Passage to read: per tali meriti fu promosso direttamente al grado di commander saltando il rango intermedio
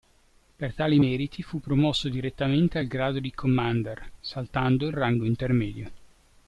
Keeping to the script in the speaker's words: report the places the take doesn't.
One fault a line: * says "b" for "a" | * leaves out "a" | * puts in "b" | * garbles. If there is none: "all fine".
all fine